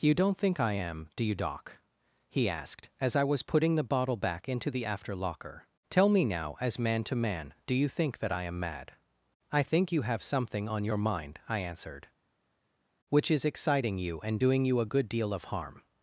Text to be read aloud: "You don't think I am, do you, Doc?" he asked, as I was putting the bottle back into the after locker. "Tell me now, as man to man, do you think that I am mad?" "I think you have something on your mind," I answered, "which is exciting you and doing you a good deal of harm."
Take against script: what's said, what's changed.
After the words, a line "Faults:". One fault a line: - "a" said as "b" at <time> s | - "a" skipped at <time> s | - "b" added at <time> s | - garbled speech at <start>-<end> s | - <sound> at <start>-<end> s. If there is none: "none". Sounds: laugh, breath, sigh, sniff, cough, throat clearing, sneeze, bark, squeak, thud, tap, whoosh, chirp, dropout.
"You don't think I am, do you, Doc?" he asked, as I was putting the bottle back into the after locker. "Tell me now, as man to man, do you think that I am mad?" "I think you have something on your mind," I answered, "which is exciting you and doing you a good deal of harm."
Faults:
none